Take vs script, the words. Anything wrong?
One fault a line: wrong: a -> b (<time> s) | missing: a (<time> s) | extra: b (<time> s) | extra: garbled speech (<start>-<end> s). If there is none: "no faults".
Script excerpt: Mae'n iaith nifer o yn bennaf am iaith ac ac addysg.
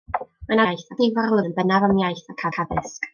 no faults